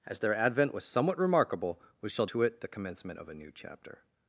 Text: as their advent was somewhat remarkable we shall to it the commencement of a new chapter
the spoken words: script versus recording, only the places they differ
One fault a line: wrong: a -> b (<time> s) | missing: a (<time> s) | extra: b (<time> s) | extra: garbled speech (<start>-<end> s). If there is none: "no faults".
no faults